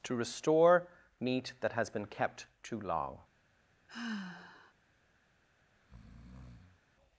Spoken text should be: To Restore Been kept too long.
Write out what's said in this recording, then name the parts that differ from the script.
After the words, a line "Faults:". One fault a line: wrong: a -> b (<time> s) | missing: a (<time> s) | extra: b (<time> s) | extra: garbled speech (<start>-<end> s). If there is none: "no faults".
To Restore Meat that has been kept too long.
Faults:
extra: Meat that has (1.2 s)